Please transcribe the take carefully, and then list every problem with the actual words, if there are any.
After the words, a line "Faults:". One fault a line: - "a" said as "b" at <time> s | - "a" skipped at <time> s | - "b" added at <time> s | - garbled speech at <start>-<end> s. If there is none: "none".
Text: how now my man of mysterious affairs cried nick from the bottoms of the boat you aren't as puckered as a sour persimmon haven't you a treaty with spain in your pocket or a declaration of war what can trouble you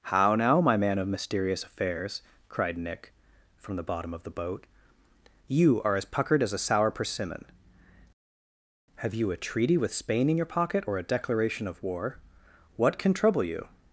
how now my man of mysterious affairs cried nick from the bottom of the boat you are as puckered as a sour persimmon have you a treaty with spain in your pocket or a declaration of war what can trouble you
Faults:
- "bottoms" said as "bottom" at 3.8 s
- "aren't" said as "are" at 5.8 s
- "haven't" said as "have" at 9.0 s